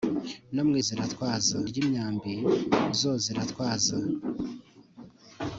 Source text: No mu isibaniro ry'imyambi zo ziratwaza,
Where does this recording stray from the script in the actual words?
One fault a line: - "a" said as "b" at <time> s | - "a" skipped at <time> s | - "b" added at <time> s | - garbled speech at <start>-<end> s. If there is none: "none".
- "isibaniro" said as "ziratwaza" at 0.9 s